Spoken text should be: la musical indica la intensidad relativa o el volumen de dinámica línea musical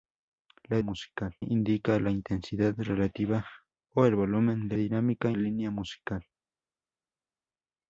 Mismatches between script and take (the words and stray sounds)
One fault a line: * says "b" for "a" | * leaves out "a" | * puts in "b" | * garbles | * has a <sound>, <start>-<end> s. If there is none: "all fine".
all fine